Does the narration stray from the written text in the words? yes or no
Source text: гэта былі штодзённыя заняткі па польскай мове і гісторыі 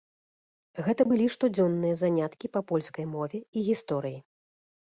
no